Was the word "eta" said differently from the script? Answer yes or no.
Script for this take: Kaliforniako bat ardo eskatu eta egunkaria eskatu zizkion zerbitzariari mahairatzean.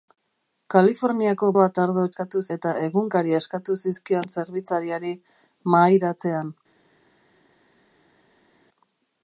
no